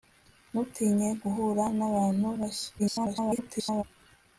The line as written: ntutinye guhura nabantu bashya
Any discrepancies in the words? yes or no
yes